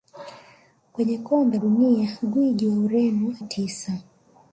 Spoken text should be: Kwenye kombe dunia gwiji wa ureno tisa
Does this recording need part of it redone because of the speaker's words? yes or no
no